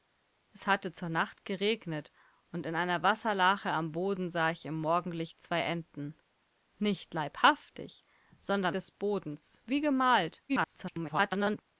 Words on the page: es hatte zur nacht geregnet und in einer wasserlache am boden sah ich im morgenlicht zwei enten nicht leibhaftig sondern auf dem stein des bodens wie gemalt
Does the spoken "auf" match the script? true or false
false